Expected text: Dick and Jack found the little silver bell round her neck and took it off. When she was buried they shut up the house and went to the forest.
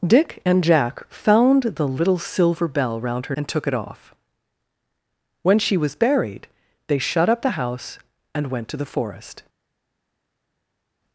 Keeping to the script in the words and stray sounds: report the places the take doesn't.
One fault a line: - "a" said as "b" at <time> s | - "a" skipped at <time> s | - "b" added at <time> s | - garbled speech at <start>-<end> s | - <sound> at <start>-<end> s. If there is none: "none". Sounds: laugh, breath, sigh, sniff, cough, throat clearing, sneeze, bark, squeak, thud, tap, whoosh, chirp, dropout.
- "neck" skipped at 3.4 s